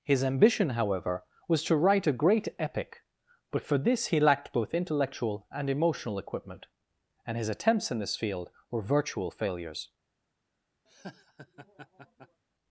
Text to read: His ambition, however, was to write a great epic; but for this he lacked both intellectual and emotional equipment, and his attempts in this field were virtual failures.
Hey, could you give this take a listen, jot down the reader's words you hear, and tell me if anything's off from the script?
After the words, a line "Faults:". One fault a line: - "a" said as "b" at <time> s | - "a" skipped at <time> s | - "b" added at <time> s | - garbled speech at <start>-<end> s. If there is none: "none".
His ambition, however, was to write a great epic; but for this he lacked both intellectual and emotional equipment, and his attempts in this field were virtual failures.
Faults:
none